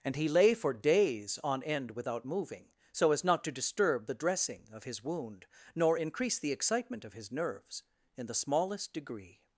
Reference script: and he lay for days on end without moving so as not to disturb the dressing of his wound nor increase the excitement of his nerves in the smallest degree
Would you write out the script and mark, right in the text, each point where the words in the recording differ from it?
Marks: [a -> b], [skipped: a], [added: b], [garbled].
and he lay for days on end without moving so as not to disturb the dressing of his wound nor increase the excitement of his nerves in the smallest degree